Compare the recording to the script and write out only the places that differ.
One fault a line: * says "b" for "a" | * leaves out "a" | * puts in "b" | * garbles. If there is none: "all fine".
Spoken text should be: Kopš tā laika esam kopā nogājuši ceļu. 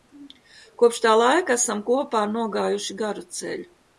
* puts in "garu"